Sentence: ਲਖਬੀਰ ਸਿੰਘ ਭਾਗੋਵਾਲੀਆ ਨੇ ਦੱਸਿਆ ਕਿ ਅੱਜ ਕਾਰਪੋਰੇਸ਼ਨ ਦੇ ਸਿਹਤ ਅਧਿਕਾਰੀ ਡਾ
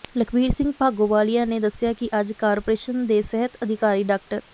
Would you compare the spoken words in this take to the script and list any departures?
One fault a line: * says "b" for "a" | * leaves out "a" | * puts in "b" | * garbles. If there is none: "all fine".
all fine